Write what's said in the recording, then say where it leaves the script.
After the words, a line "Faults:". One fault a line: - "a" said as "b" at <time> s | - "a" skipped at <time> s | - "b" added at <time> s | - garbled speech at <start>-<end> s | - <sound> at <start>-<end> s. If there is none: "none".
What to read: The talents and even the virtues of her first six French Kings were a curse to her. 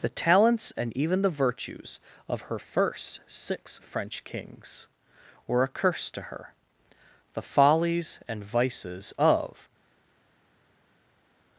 The talents and even the virtues of her first six French Kings were a curse to her. The follies and vices of
Faults:
- "The follies and vices of" added at 7.3 s